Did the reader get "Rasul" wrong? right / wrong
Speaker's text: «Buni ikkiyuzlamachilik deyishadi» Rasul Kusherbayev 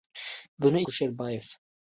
wrong